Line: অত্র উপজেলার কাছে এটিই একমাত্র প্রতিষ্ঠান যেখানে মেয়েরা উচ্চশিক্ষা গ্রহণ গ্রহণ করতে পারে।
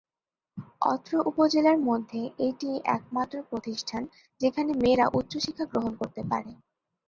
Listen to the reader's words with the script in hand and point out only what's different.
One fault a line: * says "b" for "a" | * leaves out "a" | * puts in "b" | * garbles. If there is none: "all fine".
* says "মধ্যে" for "কাছে"
* leaves out "গ্রহণ"